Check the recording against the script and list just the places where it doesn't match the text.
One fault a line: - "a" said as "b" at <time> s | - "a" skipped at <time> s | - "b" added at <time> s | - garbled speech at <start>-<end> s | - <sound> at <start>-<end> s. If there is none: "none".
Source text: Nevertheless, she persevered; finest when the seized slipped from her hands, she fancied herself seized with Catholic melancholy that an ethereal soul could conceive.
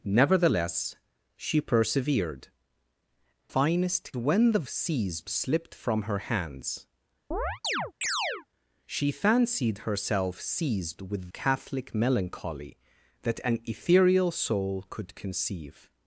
- chirp at 7.3-8.5 s